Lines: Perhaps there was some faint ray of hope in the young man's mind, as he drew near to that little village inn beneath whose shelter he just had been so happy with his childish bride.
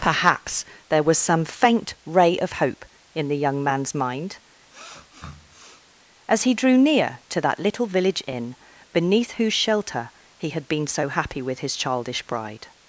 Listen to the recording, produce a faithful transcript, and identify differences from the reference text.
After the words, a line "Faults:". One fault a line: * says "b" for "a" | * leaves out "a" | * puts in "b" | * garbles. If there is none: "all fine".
Perhaps there was some faint ray of hope in the young man's mind, as he drew near to that little village inn beneath whose shelter he had been so happy with his childish bride.
Faults:
* leaves out "just"